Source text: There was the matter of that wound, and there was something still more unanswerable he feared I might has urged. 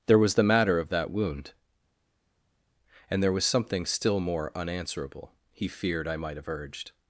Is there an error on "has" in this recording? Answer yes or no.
yes